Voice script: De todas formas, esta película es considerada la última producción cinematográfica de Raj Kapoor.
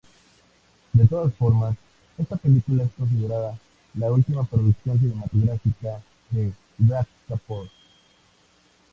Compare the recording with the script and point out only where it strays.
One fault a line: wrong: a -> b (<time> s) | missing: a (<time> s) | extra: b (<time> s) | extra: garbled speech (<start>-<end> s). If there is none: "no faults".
no faults